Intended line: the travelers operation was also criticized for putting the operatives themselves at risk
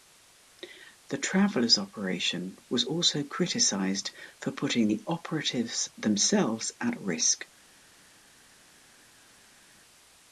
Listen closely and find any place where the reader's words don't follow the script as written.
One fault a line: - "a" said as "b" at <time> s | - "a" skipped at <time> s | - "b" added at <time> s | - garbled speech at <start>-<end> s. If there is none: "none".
none